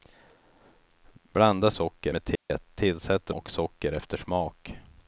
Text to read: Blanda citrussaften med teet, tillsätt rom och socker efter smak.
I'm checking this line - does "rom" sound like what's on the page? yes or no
no